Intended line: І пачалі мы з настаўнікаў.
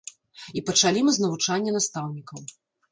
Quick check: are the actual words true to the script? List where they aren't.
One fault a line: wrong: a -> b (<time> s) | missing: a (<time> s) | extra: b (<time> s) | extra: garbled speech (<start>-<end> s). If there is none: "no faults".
extra: навучання (1.3 s)